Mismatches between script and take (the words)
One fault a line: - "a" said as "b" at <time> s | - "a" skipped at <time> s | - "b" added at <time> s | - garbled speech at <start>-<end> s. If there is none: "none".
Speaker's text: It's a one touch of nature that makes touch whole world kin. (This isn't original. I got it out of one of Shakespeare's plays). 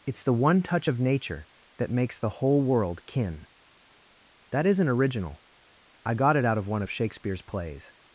- "a" said as "the" at 0.2 s
- "touch" said as "the" at 2.2 s
- "This" said as "That" at 4.5 s